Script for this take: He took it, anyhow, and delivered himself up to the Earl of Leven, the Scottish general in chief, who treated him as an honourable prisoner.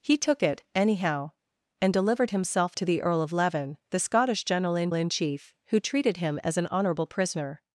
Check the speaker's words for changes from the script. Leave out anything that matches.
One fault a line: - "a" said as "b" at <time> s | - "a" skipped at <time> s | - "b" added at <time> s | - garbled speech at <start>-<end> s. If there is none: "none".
- "up" skipped at 2.8 s
- "in" added at 4.9 s